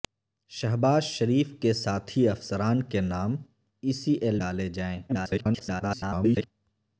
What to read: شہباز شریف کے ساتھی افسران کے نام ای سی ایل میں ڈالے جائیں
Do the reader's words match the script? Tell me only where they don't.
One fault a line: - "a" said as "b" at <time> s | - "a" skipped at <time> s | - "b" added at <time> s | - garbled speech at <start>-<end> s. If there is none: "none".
- "میں" skipped at 4.4 s
- garbled speech at 5.1-6.5 s